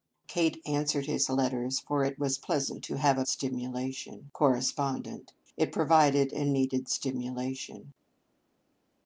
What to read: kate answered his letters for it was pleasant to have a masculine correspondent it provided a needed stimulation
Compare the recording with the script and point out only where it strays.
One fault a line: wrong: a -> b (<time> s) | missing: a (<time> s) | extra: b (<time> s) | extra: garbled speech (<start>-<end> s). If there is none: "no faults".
wrong: masculine -> stimulation (3.3 s)